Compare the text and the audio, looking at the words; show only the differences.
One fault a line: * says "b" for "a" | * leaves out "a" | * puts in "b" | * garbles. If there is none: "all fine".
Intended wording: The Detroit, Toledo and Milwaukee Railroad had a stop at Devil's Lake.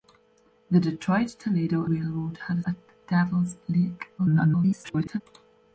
* leaves out "and Milwaukee"
* leaves out "stop"
* garbles